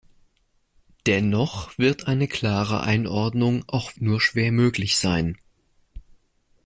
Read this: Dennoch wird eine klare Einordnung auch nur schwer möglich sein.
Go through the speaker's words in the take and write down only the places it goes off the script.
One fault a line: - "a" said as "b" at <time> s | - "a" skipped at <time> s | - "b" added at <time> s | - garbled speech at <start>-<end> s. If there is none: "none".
none